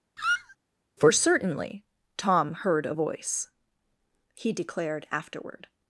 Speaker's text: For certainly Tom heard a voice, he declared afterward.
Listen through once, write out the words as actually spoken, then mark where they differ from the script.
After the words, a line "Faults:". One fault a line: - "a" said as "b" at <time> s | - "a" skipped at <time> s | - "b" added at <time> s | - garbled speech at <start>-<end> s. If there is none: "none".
For certainly Tom heard a voice, he declared afterward.
Faults:
none